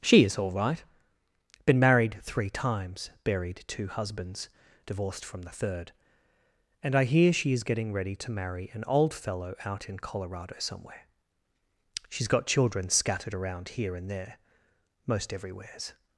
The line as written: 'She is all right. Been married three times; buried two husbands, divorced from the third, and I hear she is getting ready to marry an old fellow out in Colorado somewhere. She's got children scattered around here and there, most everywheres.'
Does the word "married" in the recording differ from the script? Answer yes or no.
no